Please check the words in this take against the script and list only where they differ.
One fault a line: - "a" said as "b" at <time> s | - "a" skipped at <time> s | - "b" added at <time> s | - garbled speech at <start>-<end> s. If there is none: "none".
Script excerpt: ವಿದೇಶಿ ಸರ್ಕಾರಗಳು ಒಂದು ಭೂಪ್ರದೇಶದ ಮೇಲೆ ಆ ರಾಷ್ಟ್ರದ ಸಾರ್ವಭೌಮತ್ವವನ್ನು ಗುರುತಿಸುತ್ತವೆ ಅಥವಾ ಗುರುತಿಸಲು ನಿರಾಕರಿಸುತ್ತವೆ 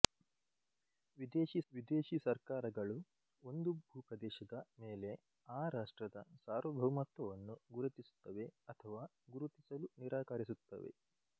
- "ವಿದೇಶಿ" added at 1.7 s